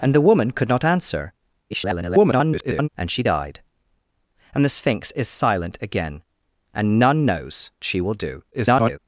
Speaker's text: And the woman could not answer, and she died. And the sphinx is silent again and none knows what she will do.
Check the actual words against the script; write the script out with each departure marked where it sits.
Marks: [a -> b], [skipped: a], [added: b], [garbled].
And the woman could not answer, [garbled] and she died. And the sphinx is silent again and none knows [skipped: what] she will do. [garbled]